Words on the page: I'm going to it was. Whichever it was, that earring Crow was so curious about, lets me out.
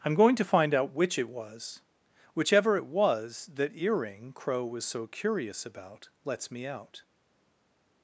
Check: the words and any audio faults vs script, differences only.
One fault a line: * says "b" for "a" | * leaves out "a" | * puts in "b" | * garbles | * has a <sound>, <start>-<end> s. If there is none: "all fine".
* puts in "find out which"